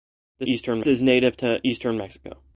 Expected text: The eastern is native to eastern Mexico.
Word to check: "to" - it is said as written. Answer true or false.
true